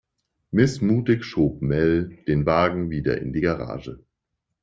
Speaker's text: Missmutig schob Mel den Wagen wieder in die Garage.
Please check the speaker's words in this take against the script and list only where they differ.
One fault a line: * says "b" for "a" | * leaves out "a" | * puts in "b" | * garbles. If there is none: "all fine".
all fine